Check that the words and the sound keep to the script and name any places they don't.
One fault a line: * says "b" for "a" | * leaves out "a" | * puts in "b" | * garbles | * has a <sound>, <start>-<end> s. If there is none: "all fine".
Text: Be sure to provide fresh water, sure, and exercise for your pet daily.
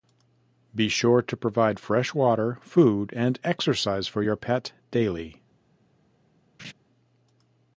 * says "food" for "sure"
* has a laugh, 6.6-6.7 s